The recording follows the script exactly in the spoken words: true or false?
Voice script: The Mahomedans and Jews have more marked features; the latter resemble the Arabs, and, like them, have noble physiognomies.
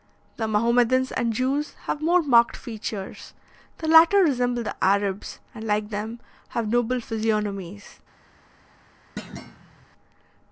true